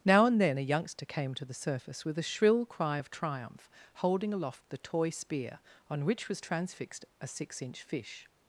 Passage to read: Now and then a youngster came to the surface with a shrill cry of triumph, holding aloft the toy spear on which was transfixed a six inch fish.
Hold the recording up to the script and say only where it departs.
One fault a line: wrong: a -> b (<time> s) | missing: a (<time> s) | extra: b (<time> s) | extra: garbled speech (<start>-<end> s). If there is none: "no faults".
no faults